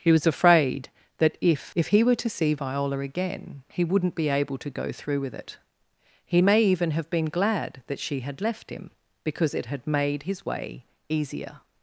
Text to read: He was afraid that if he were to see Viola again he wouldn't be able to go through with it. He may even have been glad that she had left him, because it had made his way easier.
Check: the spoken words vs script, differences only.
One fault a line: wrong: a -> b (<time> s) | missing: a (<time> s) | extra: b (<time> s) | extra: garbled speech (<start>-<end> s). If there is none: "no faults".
extra: if (1.8 s)